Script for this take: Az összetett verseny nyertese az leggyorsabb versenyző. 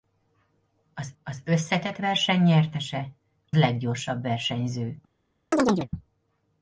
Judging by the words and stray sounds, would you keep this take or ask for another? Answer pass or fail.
fail